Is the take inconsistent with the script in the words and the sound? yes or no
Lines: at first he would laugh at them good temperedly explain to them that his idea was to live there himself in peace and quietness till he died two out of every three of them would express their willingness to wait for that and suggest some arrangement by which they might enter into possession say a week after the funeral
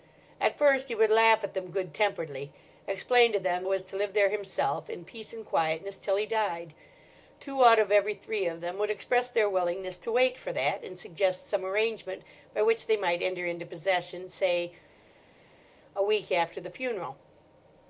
yes